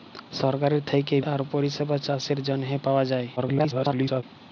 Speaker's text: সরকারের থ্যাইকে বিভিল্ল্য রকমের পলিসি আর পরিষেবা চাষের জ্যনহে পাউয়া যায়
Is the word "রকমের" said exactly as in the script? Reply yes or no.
no